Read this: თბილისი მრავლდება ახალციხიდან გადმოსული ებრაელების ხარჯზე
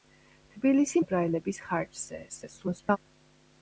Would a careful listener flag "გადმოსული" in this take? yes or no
yes